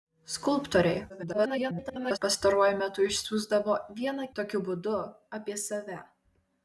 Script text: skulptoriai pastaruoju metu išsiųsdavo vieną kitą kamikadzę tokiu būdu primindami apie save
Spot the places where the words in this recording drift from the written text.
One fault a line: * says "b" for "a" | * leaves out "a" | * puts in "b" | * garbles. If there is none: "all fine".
* garbles
* leaves out "kitą kamikadzę"
* leaves out "primindami"